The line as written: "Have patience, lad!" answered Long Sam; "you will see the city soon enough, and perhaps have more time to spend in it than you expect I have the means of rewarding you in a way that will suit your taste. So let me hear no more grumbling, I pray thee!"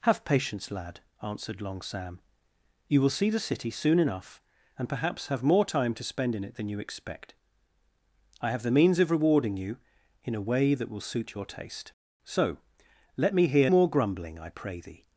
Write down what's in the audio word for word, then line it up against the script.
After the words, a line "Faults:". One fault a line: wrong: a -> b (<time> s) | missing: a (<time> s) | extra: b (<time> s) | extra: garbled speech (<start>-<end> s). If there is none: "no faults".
"Have patience, lad!" answered Long Sam; "you will see the city soon enough, and perhaps have more time to spend in it than you expect I have the means of rewarding you in a way that will suit your taste. So let me hear more grumbling, I pray thee!"
Faults:
missing: no (13.7 s)